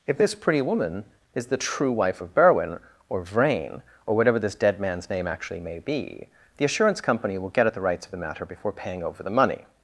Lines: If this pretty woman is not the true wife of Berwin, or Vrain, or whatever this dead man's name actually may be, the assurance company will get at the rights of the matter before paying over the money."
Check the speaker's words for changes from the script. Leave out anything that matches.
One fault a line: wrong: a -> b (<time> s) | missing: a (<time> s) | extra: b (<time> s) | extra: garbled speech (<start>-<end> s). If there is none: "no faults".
missing: not (1.4 s)